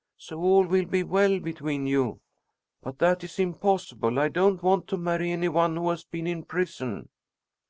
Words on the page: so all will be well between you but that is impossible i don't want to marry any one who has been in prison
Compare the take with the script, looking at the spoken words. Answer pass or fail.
pass